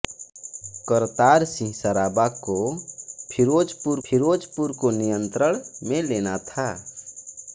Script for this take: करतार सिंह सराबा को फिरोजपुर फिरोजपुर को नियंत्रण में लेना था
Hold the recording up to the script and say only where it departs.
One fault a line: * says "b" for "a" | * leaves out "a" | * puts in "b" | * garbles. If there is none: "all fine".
all fine